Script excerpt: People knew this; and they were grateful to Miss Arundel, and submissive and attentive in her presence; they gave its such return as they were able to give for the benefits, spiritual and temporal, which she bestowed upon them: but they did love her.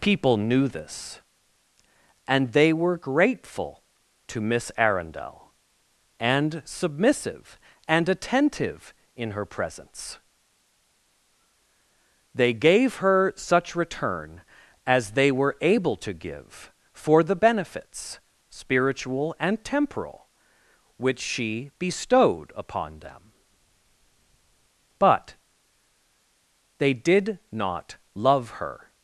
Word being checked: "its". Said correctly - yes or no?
no